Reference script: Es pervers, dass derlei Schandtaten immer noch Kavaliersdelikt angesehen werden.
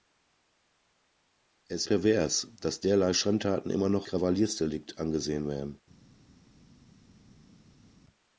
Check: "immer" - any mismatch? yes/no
no